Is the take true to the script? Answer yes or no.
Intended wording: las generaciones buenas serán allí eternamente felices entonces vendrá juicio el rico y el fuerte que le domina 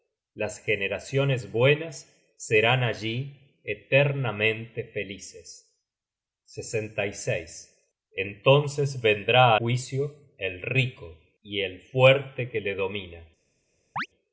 yes